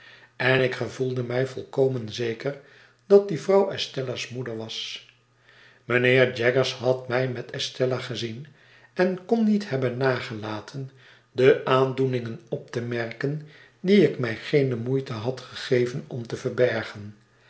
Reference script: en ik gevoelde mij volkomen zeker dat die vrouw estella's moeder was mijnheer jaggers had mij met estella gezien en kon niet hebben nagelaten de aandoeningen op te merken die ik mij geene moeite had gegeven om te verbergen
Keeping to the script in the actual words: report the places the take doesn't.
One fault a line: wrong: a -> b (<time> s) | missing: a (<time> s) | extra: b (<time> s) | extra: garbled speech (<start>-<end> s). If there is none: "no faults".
no faults